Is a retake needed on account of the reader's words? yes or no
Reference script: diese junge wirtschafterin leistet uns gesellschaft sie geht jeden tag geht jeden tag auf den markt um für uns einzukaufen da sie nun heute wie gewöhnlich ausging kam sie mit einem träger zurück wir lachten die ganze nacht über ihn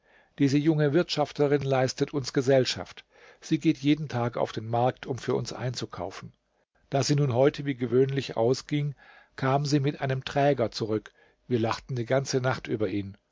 yes